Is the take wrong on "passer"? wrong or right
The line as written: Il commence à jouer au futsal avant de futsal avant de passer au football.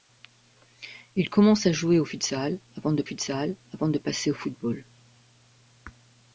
right